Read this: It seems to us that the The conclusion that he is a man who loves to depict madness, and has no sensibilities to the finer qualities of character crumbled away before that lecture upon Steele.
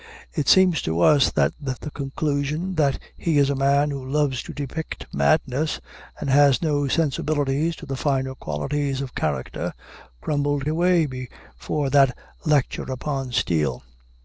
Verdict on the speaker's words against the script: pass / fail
pass